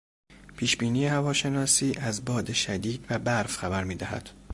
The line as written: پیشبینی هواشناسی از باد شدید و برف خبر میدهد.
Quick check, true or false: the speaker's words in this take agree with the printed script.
true